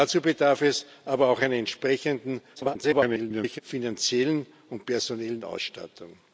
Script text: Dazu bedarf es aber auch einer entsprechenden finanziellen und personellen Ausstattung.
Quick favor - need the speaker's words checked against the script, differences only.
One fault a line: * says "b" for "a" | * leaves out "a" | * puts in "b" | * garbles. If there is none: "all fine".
* garbles